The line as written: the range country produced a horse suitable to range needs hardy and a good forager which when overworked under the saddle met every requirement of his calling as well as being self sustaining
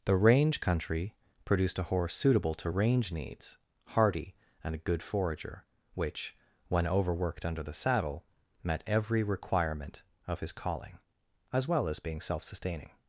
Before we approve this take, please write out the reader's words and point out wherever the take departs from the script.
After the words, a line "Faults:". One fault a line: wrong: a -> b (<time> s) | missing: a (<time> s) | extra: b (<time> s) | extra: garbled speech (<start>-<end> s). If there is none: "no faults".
the range country produced a horse suitable to range needs hardy and a good forager which when overworked under the saddle met every requirement of his calling as well as being self sustaining
Faults:
no faults